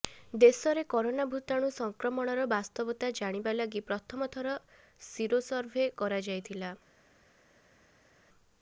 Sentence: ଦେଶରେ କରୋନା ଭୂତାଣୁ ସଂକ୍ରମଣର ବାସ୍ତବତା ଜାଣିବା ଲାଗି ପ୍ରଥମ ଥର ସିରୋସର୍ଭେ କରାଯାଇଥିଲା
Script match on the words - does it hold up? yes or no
yes